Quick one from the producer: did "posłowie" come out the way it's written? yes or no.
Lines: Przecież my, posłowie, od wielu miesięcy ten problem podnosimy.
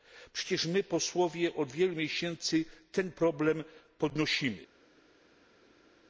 yes